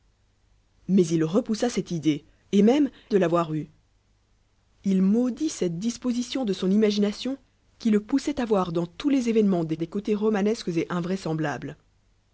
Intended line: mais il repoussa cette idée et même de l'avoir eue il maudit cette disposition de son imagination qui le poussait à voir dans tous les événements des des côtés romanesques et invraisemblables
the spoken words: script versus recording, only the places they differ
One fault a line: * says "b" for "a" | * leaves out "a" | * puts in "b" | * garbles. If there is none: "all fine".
all fine